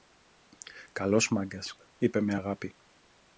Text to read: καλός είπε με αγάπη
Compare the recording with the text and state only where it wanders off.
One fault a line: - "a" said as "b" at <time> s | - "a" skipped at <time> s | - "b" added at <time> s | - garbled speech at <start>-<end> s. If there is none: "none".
- "μάγκας" added at 1.3 s